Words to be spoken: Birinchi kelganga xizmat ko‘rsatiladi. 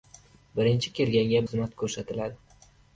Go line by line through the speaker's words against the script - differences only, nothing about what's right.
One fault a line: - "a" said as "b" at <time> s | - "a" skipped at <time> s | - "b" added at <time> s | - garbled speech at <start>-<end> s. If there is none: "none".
none